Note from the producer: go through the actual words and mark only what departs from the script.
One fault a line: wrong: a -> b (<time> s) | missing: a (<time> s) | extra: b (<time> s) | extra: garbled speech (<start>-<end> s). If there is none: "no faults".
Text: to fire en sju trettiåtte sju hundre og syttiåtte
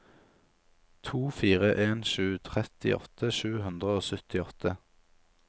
no faults